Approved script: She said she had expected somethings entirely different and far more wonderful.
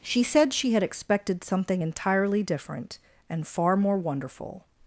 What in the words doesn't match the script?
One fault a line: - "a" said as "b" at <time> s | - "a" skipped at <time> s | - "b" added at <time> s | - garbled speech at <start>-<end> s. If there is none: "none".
- "somethings" said as "something" at 1.4 s